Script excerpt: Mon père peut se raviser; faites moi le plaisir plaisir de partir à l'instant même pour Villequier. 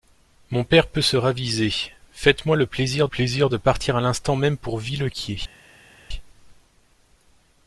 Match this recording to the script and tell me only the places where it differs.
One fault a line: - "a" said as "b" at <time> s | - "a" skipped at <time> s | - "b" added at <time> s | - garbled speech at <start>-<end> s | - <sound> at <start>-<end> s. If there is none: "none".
none